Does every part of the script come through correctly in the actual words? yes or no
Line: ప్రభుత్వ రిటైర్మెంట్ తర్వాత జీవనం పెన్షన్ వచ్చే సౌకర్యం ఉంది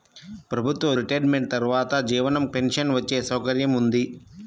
yes